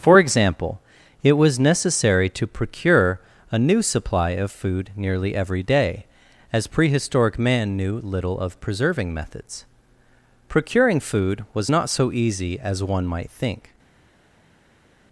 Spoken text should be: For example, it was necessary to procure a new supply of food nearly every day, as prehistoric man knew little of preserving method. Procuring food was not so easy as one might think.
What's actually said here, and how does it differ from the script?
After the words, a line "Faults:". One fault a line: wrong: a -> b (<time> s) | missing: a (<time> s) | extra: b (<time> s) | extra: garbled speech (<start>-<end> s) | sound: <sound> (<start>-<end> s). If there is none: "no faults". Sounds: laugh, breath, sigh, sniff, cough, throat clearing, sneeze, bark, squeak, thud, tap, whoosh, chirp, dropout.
For example, it was necessary to procure a new supply of food nearly every day, as prehistoric man knew little of preserving methods. Procuring food was not so easy as one might think.
Faults:
wrong: method -> methods (9.1 s)